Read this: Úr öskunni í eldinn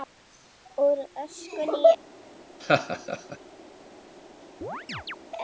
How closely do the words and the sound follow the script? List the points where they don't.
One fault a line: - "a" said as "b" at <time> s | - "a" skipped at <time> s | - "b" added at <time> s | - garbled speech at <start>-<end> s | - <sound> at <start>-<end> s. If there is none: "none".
- laugh at 2.6-3.4 s
- chirp at 4.6-5.2 s